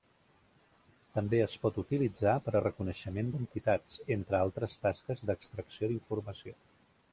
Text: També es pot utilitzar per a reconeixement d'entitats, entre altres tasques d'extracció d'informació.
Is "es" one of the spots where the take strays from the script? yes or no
no